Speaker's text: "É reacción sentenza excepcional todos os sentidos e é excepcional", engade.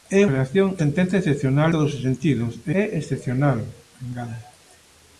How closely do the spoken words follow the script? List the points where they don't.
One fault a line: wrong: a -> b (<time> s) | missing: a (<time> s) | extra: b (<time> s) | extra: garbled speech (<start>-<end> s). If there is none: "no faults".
no faults